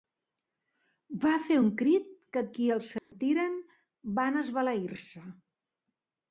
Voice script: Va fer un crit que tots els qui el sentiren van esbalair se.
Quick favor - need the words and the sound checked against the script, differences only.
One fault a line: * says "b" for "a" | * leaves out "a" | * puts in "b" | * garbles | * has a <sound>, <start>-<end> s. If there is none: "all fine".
* leaves out "tots els"
* has a dropout, 3.0-3.1 s